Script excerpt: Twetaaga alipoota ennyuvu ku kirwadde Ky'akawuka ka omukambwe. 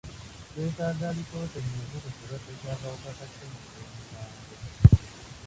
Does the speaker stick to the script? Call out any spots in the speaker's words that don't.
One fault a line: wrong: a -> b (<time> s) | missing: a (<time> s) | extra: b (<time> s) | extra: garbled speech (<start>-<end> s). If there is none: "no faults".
extra: ssenyiga (3.3 s)